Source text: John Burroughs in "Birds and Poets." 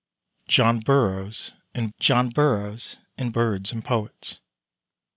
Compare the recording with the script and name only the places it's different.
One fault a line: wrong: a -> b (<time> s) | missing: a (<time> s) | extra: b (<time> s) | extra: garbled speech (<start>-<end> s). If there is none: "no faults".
extra: john Burroughs in (2.0 s)